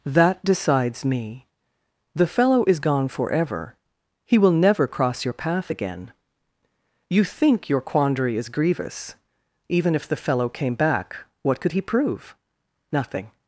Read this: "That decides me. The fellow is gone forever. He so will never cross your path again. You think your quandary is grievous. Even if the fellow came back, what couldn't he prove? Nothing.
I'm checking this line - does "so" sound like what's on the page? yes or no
no